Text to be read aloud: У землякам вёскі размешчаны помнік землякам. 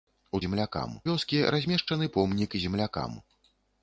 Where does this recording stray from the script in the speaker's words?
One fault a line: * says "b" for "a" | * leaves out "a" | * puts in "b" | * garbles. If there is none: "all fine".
all fine